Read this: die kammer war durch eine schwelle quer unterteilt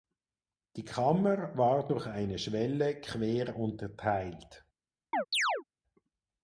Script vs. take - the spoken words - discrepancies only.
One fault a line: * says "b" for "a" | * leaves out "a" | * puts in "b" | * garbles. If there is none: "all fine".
all fine